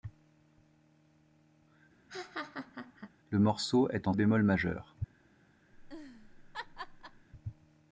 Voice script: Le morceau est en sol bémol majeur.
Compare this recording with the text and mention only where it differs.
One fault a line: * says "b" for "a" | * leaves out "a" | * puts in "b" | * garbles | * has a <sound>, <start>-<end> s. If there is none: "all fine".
* has a laugh, 2.1-3.1 s
* leaves out "sol"
* has a laugh, 5.7-7.3 s